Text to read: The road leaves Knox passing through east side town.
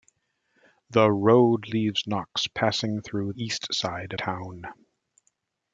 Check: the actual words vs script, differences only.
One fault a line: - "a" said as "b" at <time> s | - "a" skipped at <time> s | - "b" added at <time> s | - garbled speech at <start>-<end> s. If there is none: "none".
none